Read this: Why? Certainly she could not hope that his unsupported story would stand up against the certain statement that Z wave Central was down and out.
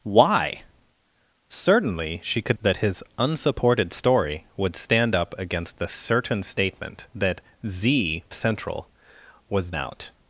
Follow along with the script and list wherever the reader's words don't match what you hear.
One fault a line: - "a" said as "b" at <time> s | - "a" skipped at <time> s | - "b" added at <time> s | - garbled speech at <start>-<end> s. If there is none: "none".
- "not hope" skipped at 2.6 s
- "wave" skipped at 8.3 s
- "down and" skipped at 9.7 s